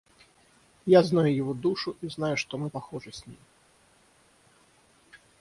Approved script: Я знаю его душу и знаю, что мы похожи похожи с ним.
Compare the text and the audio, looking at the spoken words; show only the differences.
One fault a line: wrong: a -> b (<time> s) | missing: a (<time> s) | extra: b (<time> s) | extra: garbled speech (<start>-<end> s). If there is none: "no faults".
missing: похожи (3.1 s)